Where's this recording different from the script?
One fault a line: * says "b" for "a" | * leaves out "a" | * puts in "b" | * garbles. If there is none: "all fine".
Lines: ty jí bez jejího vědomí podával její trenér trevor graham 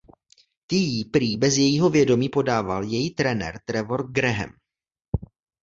* puts in "prý"